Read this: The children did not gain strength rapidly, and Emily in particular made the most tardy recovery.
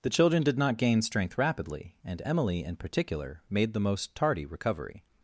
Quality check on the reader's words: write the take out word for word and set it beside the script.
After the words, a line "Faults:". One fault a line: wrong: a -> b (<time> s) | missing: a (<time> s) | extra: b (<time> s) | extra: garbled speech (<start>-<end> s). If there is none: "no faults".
The children did not gain strength rapidly, and Emily in particular made the most tardy recovery.
Faults:
no faults